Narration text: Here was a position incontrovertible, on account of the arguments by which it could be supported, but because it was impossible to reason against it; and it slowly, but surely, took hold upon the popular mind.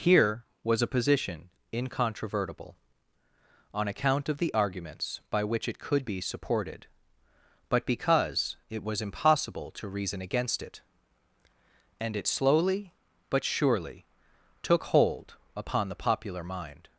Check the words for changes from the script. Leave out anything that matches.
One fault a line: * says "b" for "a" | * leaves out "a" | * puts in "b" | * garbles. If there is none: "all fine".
all fine